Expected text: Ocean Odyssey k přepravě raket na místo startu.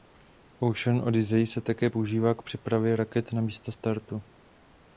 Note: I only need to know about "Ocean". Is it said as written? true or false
true